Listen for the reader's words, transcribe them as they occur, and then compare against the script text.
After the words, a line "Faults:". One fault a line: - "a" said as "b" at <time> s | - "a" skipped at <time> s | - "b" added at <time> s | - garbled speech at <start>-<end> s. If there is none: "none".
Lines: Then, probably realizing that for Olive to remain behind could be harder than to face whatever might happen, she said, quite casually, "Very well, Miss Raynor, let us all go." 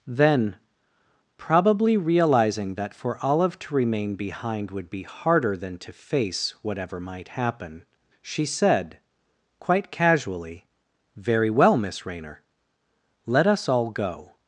Then, probably realizing that for Olive to remain behind would be harder than to face whatever might happen, she said, quite casually, "Very well, Miss Raynor, let us all go."
Faults:
- "could" said as "would" at 4.7 s